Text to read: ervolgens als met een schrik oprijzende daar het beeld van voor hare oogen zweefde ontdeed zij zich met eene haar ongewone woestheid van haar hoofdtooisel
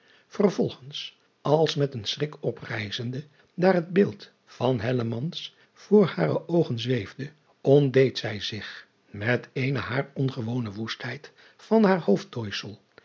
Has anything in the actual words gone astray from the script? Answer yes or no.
no